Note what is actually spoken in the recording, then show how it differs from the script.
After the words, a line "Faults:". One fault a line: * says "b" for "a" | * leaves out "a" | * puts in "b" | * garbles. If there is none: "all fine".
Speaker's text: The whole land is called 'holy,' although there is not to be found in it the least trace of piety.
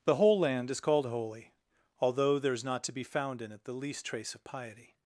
The whole land is called 'holy,' although there is not to be found in it the least trace of piety.
Faults:
all fine